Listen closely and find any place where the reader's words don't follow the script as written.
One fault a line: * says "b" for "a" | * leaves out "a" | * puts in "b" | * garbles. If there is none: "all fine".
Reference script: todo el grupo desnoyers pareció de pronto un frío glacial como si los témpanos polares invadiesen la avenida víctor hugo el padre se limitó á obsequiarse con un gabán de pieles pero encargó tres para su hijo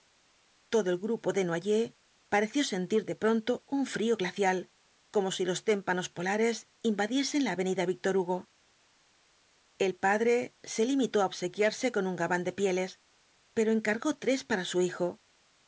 * puts in "sentir"